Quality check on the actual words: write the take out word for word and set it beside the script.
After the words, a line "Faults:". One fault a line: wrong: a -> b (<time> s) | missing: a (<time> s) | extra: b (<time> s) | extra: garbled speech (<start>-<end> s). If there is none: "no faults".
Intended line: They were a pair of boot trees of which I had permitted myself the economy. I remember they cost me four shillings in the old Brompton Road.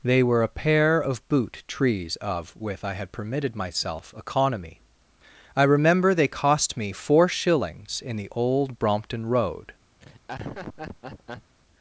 They were a pair of boot trees of with I had permitted myself economy. I remember they cost me four shillings in the old Brompton Road.
Faults:
wrong: which -> with (2.6 s)
missing: the (4.1 s)